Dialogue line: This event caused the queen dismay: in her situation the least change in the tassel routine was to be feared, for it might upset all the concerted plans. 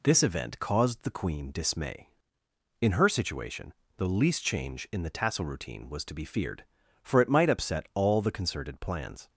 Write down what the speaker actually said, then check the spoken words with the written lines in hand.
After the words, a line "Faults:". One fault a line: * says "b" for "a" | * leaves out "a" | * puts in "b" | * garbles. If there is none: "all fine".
This event caused the queen dismay: in her situation the least change in the tassel routine was to be feared, for it might upset all the concerted plans.
Faults:
all fine